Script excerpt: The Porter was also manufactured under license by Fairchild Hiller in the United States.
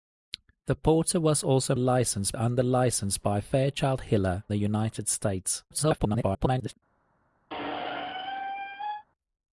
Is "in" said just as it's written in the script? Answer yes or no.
no